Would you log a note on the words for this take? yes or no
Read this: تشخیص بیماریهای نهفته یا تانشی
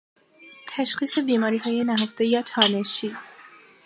no